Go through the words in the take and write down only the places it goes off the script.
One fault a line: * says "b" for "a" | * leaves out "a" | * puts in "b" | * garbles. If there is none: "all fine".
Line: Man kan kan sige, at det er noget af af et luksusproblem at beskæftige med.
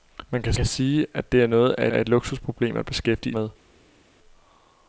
all fine